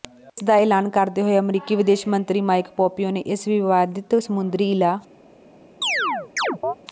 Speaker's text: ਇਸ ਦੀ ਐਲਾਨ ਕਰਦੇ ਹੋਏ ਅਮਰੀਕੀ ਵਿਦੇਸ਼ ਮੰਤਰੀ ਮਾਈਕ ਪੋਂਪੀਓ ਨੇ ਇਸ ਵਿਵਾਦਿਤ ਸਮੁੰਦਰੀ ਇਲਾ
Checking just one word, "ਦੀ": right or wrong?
wrong